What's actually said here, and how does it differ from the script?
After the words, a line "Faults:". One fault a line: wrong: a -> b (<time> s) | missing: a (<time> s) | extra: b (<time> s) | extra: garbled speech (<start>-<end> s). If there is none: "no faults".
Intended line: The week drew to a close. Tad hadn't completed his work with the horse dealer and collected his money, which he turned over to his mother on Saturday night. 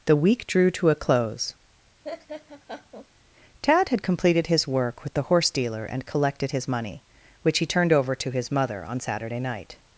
The week drew to a close. Tad had completed his work with the horse dealer and collected his money, which he turned over to his mother on Saturday night.
Faults:
wrong: hadn't -> had (3.9 s)